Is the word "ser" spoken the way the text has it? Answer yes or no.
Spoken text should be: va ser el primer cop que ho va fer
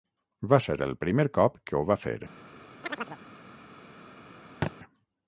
yes